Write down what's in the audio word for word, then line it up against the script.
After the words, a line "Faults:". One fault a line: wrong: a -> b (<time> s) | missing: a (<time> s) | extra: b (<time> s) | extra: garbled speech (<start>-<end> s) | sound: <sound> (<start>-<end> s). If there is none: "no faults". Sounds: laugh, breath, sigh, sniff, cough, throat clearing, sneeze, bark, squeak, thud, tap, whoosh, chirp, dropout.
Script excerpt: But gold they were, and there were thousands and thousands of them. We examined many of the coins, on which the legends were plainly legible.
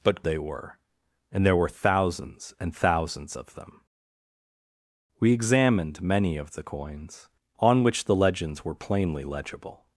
But they were, and there were thousands and thousands of them. We examined many of the coins, on which the legends were plainly legible.
Faults:
missing: gold (0.2 s)